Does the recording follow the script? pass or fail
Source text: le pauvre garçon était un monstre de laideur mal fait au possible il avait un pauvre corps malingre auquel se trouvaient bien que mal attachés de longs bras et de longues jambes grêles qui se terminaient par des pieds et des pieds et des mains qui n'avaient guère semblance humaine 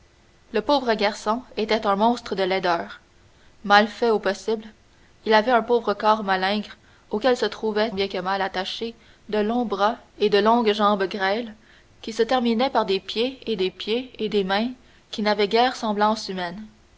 pass